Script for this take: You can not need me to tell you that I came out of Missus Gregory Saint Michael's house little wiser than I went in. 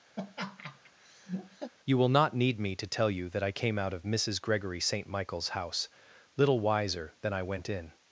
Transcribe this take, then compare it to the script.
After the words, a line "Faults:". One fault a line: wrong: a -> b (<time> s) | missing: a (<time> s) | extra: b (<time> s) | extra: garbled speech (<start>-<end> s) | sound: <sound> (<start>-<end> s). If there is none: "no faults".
You will not need me to tell you that I came out of Missus Gregory Saint Michael's house little wiser than I went in.
Faults:
sound: laugh (0.2-1.7 s)
wrong: can -> will (2.0 s)